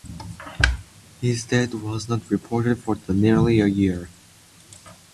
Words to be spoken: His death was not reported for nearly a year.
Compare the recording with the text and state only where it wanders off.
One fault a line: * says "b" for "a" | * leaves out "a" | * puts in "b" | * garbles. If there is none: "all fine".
all fine